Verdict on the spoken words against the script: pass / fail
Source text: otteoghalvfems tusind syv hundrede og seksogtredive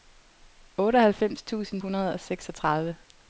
fail